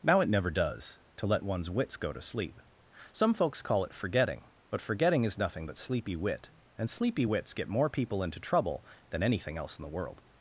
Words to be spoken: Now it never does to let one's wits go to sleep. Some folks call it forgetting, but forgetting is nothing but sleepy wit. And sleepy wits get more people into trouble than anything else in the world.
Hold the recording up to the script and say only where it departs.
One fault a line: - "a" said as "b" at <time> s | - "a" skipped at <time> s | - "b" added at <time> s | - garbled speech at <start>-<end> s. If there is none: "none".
none